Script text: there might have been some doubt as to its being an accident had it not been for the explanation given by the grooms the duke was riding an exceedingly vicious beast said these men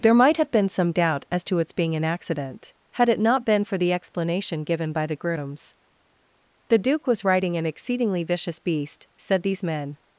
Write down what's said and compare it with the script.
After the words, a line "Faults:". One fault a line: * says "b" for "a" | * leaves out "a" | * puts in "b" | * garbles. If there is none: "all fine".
there might have been some doubt as to its being an accident had it not been for the explanation given by the grooms the duke was riding an exceedingly vicious beast said these men
Faults:
all fine